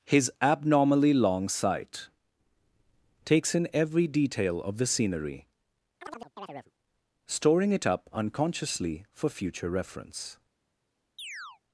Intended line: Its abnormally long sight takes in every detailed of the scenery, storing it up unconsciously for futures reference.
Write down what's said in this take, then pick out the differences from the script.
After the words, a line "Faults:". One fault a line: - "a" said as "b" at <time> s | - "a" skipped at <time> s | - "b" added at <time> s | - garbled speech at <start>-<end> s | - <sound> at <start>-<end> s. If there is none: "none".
His abnormally long sight takes in every detail of the scenery, storing it up unconsciously for future reference.
Faults:
- "Its" said as "His" at 0.1 s
- "detailed" said as "detail" at 4.1 s
- chirp at 6.0-6.7 s
- "futures" said as "future" at 9.3 s
- chirp at 11.2-11.6 s